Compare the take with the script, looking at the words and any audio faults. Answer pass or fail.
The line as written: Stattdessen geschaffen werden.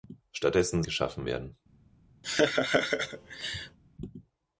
fail